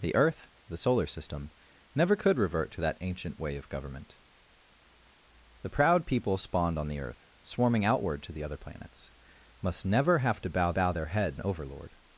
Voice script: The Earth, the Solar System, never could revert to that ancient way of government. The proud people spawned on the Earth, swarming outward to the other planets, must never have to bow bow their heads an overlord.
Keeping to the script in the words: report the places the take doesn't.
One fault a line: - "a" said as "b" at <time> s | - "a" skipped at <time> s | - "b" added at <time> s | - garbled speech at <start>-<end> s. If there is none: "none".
none